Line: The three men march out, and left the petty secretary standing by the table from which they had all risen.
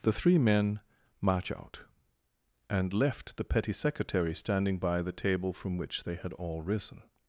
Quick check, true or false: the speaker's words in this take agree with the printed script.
true